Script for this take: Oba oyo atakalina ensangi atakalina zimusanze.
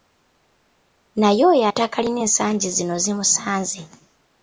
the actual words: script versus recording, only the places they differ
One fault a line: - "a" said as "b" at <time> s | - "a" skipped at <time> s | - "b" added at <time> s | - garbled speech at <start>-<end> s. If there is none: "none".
- "Oba" said as "Naye" at 1.2 s
- "atakalina" said as "zino" at 2.8 s